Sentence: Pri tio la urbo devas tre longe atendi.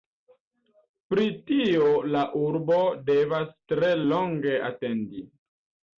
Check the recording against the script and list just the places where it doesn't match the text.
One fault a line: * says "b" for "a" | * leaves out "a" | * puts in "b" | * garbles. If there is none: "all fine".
all fine